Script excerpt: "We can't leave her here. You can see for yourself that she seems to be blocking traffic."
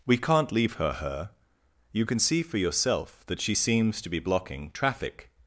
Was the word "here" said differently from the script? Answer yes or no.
no